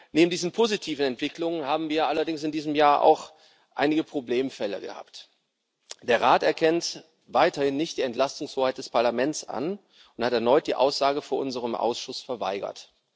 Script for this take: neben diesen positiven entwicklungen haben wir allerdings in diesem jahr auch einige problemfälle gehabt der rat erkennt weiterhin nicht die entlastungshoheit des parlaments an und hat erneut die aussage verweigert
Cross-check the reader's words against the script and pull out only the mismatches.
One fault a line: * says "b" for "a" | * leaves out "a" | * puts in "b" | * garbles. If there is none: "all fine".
* puts in "vor unserem ausschuss"